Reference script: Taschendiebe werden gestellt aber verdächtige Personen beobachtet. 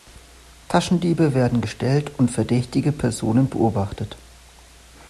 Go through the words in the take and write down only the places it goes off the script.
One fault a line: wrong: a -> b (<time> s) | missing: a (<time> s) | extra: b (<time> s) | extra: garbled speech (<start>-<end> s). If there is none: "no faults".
wrong: aber -> und (2.2 s)